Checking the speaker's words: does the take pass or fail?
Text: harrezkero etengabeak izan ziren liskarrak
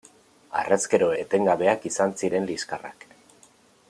pass